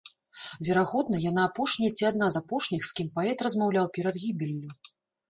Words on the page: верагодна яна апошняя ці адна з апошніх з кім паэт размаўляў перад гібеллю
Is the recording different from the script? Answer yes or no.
no